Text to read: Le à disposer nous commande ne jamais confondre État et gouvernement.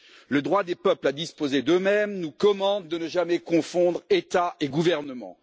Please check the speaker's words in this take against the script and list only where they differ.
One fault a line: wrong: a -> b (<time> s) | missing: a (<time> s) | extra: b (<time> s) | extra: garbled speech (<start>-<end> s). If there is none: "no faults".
extra: droit des peuples (0.4 s)
extra: d'eux mêmes (1.6 s)
extra: de (2.9 s)